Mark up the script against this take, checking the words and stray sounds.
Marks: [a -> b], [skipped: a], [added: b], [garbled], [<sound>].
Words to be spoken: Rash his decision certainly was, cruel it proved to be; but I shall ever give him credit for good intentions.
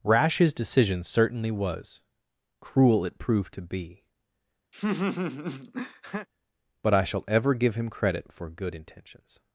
Rash his decision certainly was, cruel it proved to be; [laugh] but I shall ever give him credit for good intentions.